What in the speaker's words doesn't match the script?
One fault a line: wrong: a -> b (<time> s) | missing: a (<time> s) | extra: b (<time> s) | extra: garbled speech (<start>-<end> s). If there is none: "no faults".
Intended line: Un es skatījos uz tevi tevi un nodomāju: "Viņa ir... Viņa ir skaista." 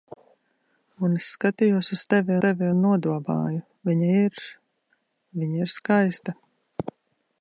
no faults